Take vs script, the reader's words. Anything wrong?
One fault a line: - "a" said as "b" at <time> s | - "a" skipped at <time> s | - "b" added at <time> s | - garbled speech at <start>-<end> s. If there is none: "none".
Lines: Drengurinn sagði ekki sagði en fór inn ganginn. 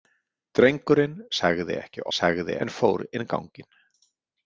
none